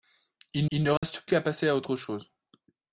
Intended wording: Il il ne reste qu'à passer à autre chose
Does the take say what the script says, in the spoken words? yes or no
yes